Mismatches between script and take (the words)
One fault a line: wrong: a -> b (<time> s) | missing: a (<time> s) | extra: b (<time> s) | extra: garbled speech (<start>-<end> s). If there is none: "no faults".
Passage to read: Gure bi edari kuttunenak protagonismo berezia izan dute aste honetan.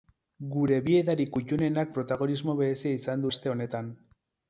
missing: dute (3.3 s)